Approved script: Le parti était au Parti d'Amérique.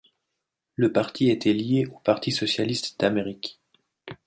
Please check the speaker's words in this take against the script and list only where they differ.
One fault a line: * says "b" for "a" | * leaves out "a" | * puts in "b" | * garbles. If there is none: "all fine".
* puts in "lié"
* puts in "socialiste"